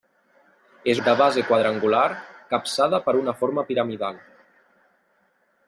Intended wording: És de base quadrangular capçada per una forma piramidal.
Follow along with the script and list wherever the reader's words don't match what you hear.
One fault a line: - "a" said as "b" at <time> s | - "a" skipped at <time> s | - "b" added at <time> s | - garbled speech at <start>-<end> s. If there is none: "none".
none